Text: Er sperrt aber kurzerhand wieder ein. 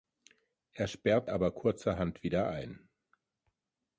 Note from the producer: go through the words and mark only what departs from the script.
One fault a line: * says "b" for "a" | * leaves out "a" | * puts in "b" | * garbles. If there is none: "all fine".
all fine